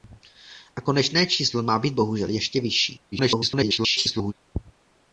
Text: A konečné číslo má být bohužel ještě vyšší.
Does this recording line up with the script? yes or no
no